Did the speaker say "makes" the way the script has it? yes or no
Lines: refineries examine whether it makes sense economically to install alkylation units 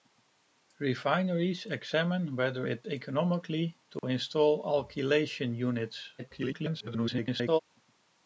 no